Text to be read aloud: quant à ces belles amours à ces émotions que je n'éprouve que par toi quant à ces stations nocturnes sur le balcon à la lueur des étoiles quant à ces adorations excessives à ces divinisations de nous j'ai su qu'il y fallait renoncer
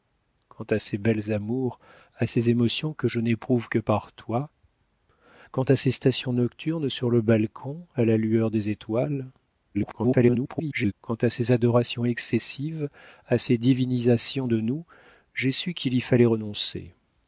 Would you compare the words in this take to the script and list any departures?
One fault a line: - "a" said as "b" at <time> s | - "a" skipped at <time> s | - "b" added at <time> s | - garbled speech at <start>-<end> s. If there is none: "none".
- garbled speech at 9.7-10.9 s